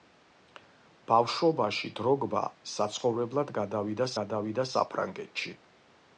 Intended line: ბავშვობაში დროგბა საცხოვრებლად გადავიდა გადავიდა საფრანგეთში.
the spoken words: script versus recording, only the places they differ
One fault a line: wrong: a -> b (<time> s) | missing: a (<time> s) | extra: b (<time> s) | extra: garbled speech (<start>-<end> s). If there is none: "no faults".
no faults